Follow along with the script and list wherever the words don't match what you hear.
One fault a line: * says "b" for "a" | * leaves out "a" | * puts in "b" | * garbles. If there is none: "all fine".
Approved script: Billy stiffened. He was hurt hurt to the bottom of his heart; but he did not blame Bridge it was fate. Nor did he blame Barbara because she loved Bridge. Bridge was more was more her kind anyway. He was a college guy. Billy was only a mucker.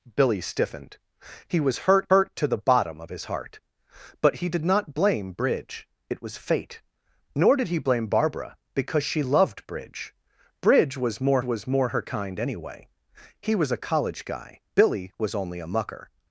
all fine